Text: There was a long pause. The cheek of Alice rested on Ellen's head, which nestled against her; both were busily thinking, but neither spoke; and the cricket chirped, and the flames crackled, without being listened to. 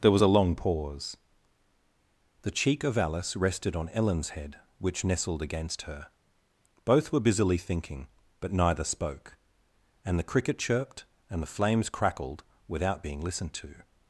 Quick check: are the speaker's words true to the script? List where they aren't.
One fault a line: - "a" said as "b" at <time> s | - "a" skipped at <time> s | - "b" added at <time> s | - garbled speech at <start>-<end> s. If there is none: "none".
none